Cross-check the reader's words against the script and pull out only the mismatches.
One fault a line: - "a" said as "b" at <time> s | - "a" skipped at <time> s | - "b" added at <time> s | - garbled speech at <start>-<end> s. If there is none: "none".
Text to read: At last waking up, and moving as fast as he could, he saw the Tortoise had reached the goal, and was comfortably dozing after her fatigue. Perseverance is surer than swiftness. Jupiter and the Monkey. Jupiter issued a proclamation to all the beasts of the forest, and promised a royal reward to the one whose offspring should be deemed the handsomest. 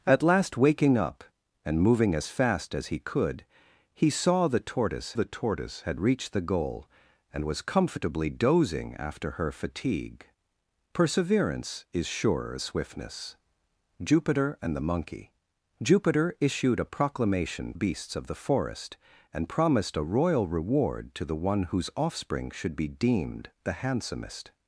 - "the Tortoise" added at 5.1 s
- "than" skipped at 12.6 s
- "to all the" skipped at 17.7 s